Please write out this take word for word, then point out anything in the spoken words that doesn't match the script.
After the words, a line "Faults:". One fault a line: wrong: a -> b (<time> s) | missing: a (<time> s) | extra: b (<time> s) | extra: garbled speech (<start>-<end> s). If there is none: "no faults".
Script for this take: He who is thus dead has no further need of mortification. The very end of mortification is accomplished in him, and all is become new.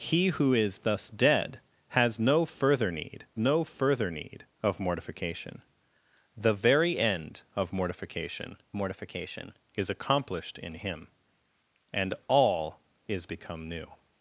He who is thus dead has no further need no further need of mortification. The very end of mortification mortification is accomplished in him, and all is become new.
Faults:
extra: no further need (3.4 s)
extra: mortification (8.8 s)